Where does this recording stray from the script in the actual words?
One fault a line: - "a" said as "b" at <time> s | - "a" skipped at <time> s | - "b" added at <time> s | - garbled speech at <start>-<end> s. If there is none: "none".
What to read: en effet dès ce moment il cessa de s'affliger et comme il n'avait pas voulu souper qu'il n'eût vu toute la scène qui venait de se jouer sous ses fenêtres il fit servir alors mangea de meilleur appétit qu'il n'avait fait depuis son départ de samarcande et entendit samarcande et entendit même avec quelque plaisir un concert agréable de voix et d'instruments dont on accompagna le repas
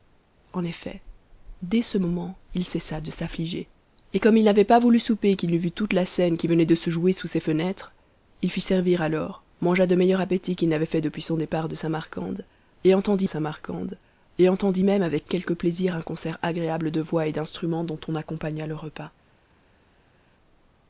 none